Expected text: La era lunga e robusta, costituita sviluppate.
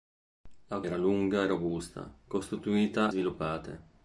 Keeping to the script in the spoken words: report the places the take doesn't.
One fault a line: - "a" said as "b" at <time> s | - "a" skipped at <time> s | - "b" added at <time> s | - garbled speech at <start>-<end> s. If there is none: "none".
none